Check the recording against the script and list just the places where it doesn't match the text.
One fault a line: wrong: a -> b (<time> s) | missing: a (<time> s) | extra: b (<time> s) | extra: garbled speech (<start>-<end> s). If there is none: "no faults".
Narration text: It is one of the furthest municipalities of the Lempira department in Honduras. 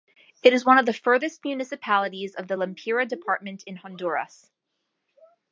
no faults